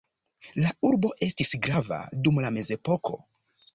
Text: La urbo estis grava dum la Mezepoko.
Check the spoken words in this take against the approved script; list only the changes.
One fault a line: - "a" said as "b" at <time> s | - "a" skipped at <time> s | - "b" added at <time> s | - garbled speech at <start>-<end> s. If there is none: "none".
none